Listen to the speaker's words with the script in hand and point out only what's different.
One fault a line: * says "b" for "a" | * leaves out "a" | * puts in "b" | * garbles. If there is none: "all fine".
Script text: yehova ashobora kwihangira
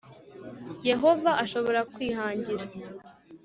all fine